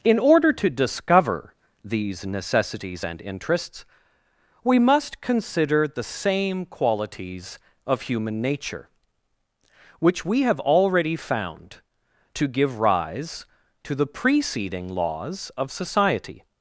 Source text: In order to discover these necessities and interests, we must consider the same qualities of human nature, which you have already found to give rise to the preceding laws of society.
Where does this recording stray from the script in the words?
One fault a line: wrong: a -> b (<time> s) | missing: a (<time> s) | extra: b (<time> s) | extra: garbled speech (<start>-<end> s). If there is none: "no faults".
wrong: you -> we (10.2 s)